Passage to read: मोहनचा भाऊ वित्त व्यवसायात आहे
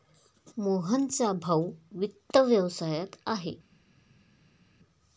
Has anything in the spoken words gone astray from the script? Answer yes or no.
no